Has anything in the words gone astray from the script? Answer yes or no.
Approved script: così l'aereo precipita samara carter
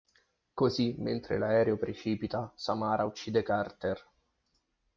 yes